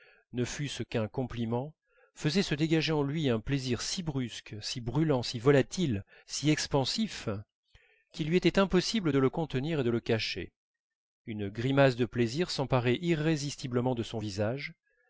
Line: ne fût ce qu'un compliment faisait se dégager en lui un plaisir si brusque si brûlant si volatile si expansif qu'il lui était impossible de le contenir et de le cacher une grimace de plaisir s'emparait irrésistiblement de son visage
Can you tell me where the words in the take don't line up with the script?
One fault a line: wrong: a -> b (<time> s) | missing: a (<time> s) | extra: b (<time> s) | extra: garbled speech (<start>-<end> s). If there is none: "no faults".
no faults